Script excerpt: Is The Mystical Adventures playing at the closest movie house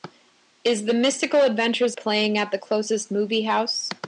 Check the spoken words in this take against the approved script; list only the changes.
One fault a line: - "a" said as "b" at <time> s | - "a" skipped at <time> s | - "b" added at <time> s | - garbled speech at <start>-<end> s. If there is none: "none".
none